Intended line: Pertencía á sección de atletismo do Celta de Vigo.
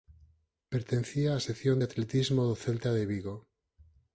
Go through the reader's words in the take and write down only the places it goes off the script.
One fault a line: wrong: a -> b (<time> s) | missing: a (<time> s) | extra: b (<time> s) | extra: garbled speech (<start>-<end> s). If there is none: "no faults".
no faults